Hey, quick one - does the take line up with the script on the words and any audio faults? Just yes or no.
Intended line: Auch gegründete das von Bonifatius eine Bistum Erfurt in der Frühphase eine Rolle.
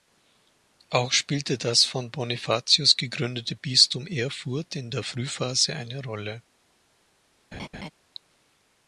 no